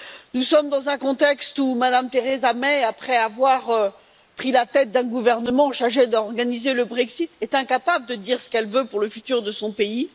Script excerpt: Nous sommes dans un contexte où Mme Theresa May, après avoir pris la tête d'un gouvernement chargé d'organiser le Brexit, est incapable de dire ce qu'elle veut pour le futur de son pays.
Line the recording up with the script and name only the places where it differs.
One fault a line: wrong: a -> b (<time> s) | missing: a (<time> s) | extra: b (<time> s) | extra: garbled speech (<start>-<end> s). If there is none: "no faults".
no faults